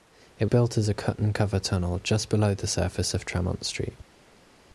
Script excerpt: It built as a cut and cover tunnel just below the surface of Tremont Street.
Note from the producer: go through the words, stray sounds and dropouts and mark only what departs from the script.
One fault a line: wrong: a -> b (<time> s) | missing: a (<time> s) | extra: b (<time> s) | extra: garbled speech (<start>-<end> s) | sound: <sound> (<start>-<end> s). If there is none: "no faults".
no faults